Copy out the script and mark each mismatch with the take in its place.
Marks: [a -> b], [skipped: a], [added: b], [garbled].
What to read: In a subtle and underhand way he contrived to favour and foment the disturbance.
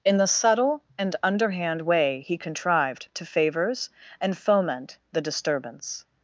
In [a -> the] subtle and underhand way he contrived to [favour -> favours] and foment the disturbance.